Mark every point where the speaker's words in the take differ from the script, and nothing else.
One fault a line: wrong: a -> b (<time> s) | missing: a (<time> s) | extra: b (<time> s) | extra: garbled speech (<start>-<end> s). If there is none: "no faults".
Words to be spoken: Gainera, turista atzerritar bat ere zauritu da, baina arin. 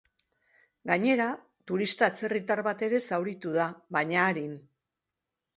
no faults